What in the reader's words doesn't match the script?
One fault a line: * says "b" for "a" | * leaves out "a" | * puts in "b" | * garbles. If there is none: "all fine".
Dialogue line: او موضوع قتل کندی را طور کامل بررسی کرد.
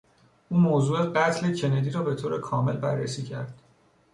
* puts in "به"